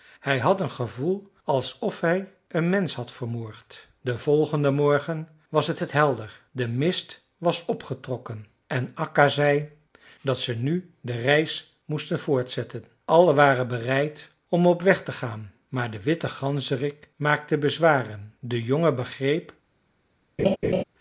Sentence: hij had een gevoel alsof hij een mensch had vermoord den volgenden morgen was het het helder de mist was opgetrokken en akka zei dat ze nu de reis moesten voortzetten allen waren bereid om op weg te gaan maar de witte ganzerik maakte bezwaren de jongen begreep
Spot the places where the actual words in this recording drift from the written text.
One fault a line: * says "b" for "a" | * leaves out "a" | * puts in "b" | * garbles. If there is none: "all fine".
all fine